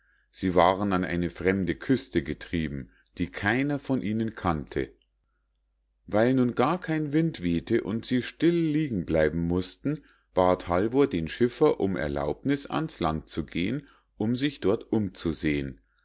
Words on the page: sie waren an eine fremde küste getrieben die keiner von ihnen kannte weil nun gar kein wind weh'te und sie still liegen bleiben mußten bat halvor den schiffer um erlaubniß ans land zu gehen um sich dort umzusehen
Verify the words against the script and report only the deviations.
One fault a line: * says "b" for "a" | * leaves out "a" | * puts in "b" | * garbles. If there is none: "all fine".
all fine